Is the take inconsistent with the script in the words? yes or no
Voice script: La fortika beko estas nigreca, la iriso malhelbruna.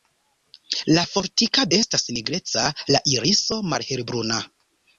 yes